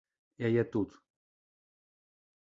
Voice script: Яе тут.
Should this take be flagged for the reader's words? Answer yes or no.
no